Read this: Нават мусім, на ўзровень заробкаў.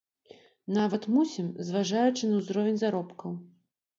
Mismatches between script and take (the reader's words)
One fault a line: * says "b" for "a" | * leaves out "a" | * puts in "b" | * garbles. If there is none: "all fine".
* puts in "зважаючы"